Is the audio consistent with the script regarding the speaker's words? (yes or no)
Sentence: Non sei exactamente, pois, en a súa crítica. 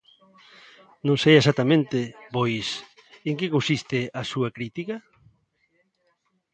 no